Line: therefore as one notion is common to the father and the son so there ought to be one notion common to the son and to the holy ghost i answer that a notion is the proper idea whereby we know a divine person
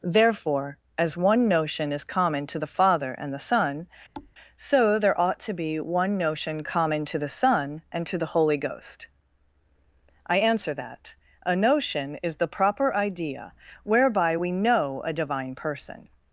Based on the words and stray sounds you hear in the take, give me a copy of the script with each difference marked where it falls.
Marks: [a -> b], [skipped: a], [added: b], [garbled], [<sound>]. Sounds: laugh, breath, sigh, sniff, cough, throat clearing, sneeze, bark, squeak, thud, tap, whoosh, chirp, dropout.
therefore as one notion is common to the father and the son [thud] so there ought to be one notion common to the son and to the holy ghost i answer that a notion is the proper idea whereby we know a divine person